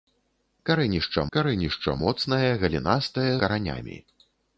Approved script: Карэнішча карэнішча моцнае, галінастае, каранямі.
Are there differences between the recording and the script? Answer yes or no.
no